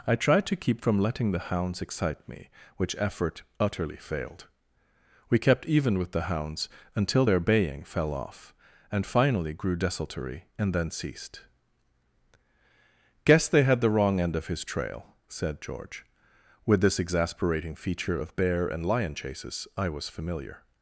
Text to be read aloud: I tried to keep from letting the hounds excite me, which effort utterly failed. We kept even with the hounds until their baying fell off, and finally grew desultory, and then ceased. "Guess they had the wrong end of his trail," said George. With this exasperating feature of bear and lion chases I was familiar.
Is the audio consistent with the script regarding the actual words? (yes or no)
yes